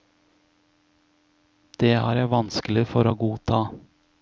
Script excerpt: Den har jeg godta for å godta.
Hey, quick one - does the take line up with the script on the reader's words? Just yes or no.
no